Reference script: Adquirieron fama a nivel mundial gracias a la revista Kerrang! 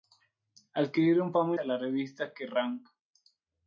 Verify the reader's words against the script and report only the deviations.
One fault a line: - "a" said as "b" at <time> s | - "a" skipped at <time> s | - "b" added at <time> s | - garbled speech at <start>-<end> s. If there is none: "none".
- "nivel mundial gracias" skipped at 1.6 s